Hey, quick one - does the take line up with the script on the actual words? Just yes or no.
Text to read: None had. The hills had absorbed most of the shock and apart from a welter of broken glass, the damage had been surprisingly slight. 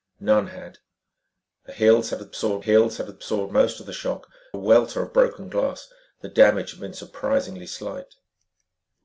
no